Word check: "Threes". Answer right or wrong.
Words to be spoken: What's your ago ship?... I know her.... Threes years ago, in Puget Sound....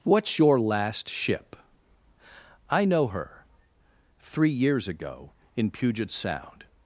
wrong